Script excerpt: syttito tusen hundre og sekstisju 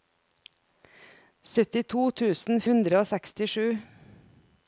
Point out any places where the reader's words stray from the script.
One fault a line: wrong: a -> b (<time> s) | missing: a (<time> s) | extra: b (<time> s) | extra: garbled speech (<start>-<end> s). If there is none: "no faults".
no faults